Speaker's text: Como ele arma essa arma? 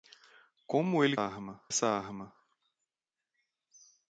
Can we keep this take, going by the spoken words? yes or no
yes